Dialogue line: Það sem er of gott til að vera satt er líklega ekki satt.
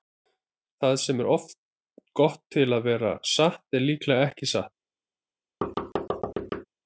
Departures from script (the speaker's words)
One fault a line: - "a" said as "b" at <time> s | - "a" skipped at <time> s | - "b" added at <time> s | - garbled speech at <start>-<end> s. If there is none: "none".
none